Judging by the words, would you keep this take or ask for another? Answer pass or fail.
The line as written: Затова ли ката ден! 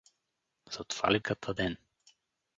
pass